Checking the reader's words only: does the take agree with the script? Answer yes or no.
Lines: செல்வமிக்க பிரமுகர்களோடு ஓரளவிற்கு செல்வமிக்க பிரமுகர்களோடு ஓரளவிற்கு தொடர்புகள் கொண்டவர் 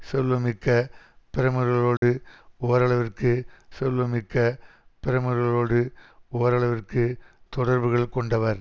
yes